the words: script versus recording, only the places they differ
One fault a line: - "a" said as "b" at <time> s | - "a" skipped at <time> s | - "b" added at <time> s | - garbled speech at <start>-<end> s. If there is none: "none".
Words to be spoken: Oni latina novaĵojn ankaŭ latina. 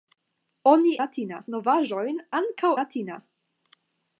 none